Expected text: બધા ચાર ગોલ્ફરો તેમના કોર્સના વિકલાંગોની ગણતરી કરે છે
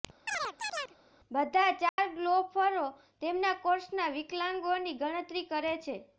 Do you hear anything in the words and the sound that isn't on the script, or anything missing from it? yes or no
yes